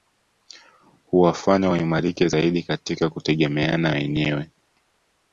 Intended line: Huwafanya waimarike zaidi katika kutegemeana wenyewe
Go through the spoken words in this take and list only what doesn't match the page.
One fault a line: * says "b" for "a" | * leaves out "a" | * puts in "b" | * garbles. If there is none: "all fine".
all fine